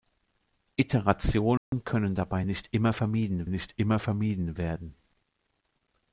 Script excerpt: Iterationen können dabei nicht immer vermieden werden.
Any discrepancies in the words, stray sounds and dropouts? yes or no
yes